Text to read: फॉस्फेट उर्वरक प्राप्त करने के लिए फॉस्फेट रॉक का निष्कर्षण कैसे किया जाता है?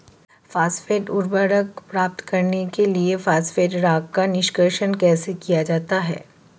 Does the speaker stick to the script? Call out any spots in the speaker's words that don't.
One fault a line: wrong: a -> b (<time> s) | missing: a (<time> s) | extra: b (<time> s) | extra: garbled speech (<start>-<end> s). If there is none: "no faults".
no faults